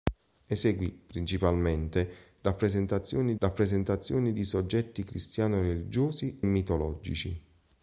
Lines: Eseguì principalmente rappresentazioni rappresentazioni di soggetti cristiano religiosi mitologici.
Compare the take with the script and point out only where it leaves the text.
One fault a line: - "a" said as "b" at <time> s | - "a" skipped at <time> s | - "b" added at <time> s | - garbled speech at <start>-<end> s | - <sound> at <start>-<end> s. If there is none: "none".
none